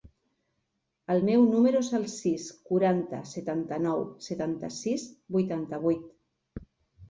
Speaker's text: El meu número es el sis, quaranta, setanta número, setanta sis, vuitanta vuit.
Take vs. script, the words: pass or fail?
fail